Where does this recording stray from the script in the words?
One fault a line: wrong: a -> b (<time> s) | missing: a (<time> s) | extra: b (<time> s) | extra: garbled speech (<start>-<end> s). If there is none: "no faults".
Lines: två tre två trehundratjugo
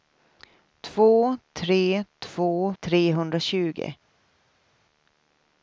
no faults